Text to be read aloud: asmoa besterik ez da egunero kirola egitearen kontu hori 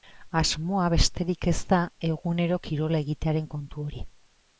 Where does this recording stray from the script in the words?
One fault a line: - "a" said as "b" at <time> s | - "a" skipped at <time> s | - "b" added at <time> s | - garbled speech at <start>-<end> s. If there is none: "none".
none